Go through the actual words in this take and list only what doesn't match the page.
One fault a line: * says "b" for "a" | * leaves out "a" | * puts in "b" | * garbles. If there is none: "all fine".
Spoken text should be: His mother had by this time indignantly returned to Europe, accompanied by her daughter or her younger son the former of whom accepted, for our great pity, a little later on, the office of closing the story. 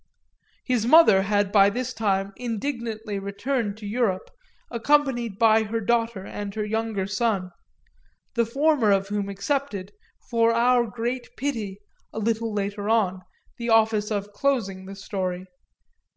* says "and" for "or"